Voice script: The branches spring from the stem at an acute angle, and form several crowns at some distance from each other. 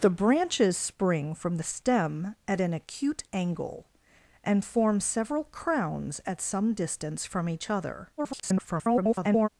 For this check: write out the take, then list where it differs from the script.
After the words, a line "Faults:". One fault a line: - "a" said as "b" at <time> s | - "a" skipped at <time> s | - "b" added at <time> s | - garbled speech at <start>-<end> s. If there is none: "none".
The branches spring from the stem at an acute angle, and form several crowns at some distance from each other. [garbled]
Faults:
- garbled speech at 8.2-9.5 s